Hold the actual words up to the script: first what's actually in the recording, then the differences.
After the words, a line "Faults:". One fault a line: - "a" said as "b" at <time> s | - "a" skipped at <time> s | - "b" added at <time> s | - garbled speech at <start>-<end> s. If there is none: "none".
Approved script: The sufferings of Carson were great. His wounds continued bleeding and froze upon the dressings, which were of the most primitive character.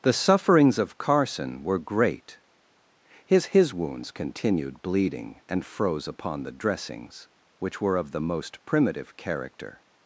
The sufferings of Carson were great. His His wounds continued bleeding and froze upon the dressings, which were of the most primitive character.
Faults:
- "His" added at 3.5 s